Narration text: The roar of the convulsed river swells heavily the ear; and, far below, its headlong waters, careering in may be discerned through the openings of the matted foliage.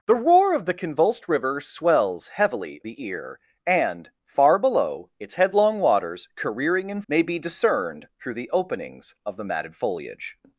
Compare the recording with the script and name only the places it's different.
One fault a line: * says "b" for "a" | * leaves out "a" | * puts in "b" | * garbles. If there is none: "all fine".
all fine